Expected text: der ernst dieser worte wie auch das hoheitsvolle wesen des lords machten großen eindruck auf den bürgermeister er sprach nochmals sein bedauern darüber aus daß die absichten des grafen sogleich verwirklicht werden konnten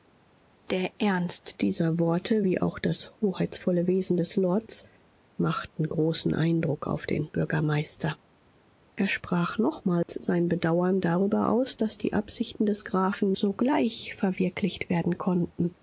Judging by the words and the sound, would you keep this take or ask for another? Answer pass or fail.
fail